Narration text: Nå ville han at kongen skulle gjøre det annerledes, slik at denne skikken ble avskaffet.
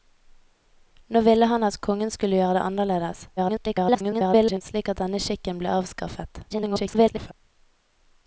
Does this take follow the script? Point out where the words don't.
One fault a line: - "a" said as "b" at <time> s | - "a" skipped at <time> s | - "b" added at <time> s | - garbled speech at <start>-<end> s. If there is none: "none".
- garbled speech at 3.4-4.6 s
- garbled speech at 6.5-7.3 s